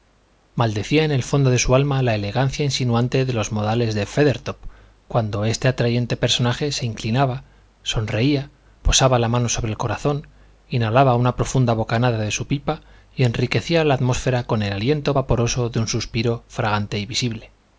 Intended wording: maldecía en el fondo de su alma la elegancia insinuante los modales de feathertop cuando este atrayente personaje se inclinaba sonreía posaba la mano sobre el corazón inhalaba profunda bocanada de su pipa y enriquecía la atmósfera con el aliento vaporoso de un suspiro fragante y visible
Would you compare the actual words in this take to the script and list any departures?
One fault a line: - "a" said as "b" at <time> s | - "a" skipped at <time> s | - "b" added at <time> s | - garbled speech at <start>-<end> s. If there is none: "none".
- "de" added at 3.2 s
- "una" added at 11.2 s